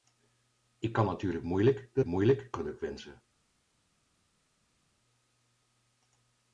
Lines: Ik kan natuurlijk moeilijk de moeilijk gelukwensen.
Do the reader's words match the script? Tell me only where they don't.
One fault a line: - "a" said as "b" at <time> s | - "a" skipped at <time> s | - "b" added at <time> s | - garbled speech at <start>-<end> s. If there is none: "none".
none